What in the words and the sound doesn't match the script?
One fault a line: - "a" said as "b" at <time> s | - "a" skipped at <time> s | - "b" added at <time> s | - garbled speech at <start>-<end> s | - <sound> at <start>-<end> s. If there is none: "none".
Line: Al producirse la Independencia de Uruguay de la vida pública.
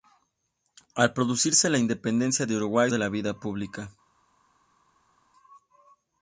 none